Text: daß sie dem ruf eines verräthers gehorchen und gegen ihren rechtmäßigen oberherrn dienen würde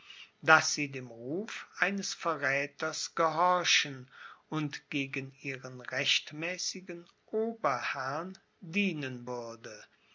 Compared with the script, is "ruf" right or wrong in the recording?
right